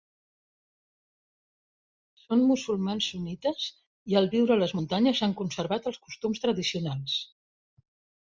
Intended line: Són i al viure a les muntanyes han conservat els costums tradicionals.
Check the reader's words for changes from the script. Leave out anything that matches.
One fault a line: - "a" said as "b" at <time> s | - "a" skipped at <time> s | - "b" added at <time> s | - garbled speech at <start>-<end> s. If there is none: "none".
- "musulmans sunnites" added at 2.5 s